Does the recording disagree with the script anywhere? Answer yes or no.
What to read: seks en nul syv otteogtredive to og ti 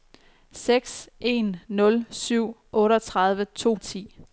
no